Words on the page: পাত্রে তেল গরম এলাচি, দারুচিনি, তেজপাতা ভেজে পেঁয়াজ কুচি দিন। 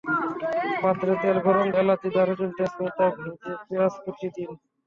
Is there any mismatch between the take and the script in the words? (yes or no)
no